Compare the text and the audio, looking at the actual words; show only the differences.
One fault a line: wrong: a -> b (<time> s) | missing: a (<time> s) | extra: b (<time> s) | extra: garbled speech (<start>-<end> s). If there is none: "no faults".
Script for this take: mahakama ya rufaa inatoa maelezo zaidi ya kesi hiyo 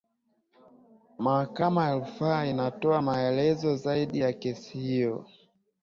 no faults